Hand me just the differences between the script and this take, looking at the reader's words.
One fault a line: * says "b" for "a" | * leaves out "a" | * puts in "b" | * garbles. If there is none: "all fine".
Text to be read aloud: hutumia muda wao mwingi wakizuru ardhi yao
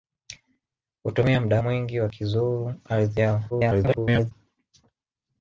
* leaves out "wao"
* garbles